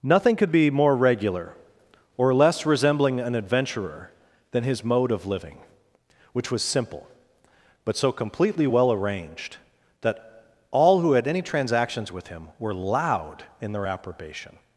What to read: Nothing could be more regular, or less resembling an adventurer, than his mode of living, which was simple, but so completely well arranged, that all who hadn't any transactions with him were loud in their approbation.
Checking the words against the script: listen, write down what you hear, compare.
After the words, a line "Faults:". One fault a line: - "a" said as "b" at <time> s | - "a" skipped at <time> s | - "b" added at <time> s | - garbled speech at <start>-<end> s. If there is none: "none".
Nothing could be more regular, or less resembling an adventurer, than his mode of living, which was simple, but so completely well arranged, that all who had any transactions with him were loud in their approbation.
Faults:
- "hadn't" said as "had" at 11.1 s